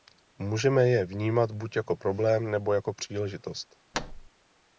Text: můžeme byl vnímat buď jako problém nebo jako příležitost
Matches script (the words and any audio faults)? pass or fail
fail